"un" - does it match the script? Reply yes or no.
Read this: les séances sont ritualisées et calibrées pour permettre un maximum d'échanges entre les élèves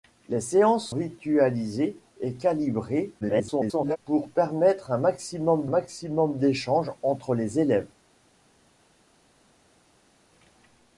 yes